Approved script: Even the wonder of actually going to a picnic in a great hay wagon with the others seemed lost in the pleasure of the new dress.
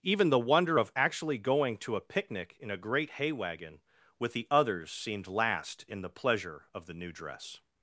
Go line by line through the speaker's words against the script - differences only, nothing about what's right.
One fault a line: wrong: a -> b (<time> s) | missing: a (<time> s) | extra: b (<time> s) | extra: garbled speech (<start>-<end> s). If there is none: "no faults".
wrong: lost -> last (5.3 s)